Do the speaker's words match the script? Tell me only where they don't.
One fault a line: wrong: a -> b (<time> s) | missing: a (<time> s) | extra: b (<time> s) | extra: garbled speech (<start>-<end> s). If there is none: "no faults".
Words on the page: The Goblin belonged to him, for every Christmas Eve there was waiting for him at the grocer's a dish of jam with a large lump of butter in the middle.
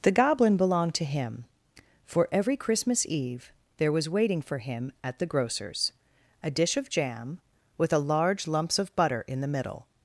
wrong: lump -> lumps (8.5 s)